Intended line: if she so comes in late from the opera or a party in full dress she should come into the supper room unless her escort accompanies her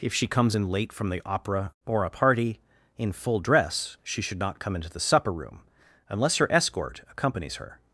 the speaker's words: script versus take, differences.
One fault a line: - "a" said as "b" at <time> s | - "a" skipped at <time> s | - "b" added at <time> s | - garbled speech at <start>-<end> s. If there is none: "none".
- "so" skipped at 0.2 s
- "not" added at 4.4 s